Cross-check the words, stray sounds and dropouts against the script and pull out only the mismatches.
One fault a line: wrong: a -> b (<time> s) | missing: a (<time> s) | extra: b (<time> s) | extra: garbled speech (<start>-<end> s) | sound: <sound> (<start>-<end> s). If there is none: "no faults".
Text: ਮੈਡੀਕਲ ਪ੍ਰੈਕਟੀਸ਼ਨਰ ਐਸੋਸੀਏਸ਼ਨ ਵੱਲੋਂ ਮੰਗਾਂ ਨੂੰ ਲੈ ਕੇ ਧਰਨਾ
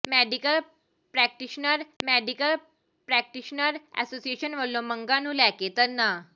extra: ਮੈਡੀਕਲ ਪ੍ਰੈਕਟੀਸ਼ਨਰ (2.0 s)